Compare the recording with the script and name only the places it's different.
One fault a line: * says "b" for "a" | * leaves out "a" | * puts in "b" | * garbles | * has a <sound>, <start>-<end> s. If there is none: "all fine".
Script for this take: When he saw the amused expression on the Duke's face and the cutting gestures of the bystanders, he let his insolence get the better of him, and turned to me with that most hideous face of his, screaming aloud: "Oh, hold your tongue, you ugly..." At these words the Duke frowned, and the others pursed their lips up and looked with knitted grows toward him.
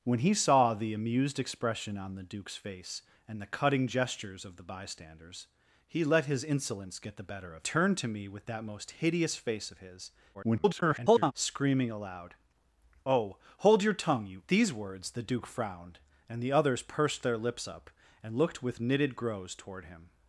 * leaves out "him and"
* garbles
* leaves out "ugly At"